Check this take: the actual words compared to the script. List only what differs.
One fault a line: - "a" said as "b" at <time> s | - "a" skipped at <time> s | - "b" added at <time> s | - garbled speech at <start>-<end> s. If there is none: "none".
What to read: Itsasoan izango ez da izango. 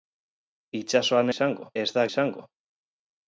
none